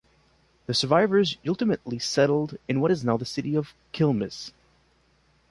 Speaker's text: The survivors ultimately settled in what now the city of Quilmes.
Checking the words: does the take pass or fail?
fail